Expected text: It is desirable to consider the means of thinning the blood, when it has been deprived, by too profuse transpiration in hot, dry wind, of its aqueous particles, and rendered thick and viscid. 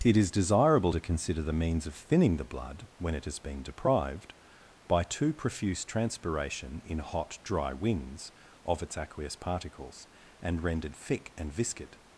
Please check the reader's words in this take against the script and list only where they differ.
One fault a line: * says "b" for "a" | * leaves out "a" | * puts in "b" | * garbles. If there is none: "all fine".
* says "winds" for "wind"